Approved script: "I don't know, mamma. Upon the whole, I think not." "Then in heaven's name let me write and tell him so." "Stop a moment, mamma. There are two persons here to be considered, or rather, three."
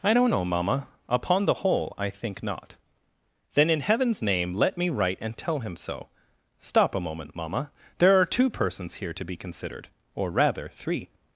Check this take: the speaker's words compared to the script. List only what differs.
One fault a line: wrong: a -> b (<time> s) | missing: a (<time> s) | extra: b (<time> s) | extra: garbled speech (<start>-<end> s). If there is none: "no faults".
no faults